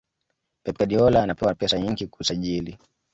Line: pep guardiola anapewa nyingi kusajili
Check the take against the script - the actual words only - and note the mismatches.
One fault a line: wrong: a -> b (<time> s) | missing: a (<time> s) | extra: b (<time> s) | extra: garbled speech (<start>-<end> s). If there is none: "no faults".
extra: pesa (1.5 s)